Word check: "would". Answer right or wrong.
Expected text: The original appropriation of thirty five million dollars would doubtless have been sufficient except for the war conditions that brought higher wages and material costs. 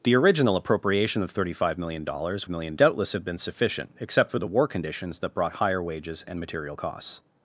wrong